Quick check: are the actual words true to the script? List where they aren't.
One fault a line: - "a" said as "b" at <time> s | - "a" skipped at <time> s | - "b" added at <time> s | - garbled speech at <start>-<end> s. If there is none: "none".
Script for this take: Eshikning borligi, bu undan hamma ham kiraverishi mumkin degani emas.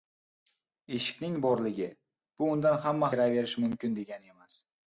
- "ham" skipped at 3.1 s